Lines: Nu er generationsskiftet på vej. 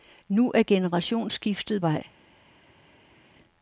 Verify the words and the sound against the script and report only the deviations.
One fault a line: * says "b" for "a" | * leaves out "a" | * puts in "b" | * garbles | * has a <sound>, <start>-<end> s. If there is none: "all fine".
* leaves out "på"